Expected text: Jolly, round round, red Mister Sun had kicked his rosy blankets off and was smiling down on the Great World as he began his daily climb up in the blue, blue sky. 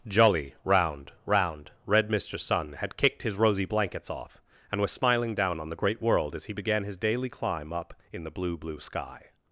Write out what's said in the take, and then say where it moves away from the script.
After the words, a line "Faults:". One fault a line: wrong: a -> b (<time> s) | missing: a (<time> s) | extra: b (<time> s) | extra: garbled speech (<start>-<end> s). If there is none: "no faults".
Jolly, round round, red Mister Sun had kicked his rosy blankets off and was smiling down on the Great World as he began his daily climb up in the blue, blue sky.
Faults:
no faults